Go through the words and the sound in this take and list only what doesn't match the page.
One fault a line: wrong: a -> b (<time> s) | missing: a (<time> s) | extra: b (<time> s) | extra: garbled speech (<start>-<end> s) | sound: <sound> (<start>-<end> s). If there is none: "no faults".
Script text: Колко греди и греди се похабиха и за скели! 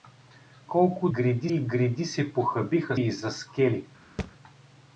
sound: thud (4.2-4.3 s)